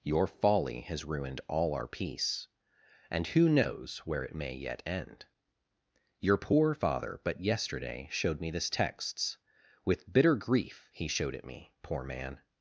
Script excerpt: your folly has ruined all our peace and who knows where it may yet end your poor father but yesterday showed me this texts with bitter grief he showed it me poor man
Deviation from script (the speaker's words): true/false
false